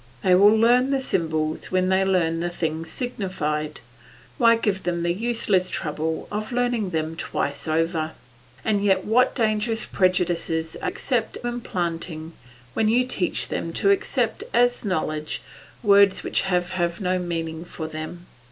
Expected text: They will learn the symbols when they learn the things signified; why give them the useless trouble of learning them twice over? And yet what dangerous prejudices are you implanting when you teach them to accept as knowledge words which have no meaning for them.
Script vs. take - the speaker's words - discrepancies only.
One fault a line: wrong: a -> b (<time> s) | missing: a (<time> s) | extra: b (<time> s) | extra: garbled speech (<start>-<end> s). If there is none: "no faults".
wrong: you -> accept (10.8 s)
extra: have (16.7 s)